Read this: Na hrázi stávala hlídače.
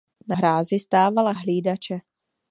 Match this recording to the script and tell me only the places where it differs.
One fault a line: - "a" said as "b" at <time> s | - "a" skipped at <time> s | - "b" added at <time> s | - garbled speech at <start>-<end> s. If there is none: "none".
none